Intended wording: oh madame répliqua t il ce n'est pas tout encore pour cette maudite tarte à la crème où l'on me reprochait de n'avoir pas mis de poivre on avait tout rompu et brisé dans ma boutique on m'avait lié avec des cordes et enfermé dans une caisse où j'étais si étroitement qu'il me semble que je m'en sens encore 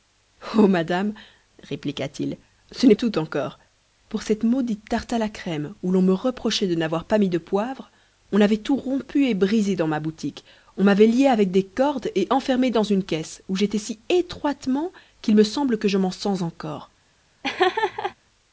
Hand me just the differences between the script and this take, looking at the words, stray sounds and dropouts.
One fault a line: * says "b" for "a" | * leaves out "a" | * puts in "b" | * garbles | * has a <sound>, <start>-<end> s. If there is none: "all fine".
* leaves out "pas"
* has a laugh, 17.4-18.2 s